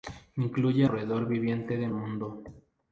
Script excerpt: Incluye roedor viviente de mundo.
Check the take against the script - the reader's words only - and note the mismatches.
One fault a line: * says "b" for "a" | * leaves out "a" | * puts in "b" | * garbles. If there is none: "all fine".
all fine